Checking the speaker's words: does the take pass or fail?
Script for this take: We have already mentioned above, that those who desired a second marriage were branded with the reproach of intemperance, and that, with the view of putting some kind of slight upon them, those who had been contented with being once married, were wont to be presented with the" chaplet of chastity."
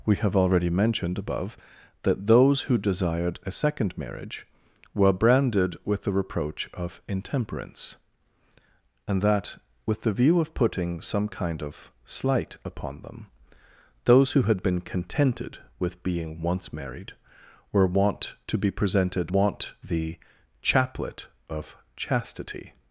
fail